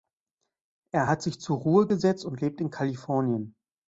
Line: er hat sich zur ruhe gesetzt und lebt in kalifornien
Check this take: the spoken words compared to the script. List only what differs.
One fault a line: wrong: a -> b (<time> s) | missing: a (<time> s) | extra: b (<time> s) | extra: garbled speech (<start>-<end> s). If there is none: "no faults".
no faults